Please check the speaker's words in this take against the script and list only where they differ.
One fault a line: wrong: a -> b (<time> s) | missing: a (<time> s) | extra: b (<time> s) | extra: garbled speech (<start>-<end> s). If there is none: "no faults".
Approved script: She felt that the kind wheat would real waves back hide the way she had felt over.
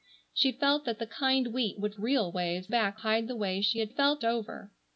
no faults